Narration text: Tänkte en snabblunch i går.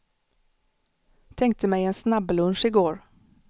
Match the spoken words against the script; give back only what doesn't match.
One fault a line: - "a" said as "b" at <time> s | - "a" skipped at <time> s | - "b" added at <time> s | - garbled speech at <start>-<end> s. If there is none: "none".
- "mig" added at 1.7 s